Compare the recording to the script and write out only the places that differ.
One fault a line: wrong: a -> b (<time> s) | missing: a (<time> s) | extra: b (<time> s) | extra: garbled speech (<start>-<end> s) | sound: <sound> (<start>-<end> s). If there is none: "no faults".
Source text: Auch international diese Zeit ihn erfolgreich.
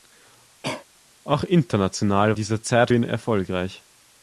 sound: cough (0.6-0.9 s)